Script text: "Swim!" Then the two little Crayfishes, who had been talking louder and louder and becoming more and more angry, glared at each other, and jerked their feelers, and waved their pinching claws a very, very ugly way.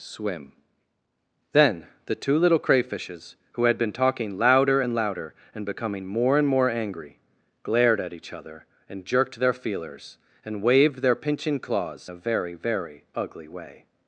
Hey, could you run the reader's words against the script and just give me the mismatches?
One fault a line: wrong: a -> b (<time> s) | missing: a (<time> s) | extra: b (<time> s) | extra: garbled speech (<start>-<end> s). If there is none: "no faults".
no faults